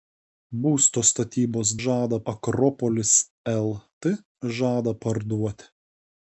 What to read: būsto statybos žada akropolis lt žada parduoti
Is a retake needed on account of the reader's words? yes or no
no